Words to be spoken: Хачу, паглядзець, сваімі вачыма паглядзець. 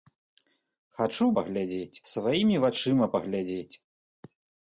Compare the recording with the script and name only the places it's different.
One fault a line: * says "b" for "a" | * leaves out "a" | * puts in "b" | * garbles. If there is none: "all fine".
all fine